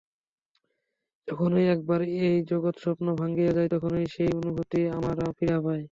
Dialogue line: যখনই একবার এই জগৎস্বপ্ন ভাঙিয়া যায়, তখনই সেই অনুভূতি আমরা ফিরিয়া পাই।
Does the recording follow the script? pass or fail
pass